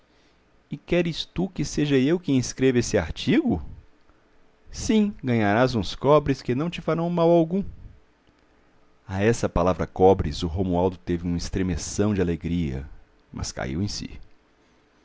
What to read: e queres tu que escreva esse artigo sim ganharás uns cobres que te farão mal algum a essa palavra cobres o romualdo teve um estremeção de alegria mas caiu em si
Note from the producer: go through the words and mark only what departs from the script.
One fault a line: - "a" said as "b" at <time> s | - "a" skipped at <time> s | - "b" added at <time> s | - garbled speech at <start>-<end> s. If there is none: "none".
- "seja eu quem" added at 1.6 s
- "não" added at 6.5 s